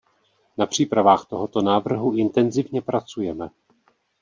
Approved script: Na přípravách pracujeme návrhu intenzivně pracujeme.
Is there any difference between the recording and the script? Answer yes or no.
yes